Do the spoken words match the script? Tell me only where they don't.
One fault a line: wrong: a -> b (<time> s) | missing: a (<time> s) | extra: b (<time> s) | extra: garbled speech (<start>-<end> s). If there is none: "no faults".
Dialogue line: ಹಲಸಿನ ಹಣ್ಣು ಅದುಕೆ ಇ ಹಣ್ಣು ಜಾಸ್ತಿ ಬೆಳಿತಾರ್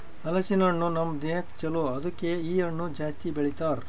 extra: ನಮ್ ದೇಹಕ್ ಛಲೋ (0.9 s)